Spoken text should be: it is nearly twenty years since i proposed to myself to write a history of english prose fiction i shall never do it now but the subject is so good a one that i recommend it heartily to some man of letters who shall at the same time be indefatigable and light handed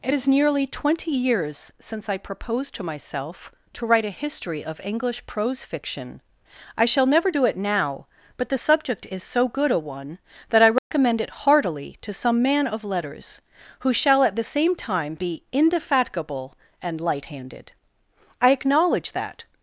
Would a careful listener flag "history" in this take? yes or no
no